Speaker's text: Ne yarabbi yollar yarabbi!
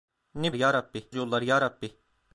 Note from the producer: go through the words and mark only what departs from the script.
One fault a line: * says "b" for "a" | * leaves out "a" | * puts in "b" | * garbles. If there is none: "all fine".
all fine